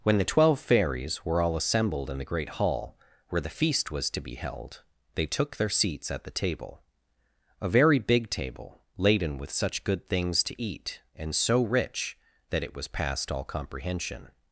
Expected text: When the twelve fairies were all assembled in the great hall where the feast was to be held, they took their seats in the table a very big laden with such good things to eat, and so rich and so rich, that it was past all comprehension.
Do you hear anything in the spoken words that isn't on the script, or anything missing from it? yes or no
yes